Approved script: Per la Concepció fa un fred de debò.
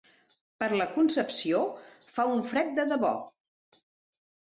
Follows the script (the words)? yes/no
yes